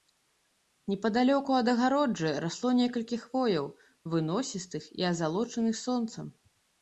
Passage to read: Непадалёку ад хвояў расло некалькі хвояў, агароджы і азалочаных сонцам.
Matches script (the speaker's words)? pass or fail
fail